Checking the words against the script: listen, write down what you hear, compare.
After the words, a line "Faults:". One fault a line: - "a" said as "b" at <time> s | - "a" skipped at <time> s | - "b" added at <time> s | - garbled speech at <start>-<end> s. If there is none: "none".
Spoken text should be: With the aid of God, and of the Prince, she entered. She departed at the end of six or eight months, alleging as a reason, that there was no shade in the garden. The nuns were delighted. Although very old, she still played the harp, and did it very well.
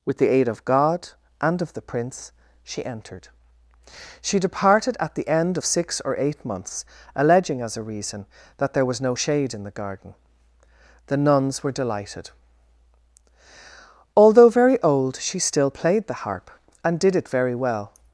With the aid of God, and of the Prince, she entered. She departed at the end of six or eight months, alleging as a reason, that there was no shade in the garden. The nuns were delighted. Although very old, she still played the harp, and did it very well.
Faults:
none